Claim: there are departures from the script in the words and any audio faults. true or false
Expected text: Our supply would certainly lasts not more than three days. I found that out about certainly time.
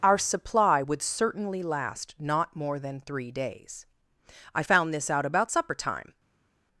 true